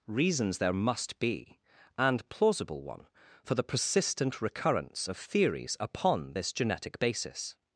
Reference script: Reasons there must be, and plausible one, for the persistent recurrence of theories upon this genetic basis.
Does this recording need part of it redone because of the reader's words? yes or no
no